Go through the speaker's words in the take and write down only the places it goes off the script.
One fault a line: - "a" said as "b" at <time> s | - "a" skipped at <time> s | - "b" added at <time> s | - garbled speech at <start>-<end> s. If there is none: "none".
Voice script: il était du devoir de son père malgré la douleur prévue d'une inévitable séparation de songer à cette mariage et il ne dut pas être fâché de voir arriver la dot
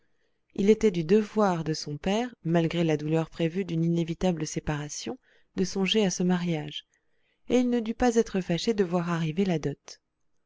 - "cette" said as "ce" at 6.1 s